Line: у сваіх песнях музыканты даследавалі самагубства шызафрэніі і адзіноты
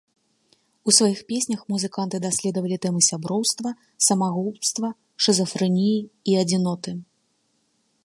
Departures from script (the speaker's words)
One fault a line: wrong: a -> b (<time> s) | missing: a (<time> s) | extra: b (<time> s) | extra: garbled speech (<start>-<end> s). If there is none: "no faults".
extra: тэмы сяброўства (2.9 s)